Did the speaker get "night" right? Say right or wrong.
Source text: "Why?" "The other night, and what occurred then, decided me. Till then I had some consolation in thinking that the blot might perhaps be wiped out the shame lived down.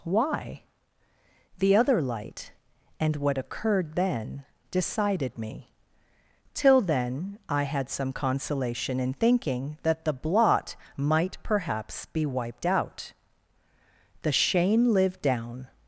wrong